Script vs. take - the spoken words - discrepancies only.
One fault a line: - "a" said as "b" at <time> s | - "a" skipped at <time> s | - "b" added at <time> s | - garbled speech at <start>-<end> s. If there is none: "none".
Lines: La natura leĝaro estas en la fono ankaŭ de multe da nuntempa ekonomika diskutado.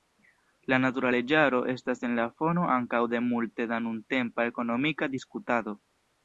none